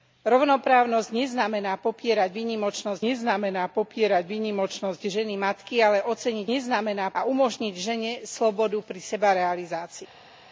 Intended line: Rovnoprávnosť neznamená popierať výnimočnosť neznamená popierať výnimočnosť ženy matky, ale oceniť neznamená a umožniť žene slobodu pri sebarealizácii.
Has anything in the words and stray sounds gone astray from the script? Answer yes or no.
no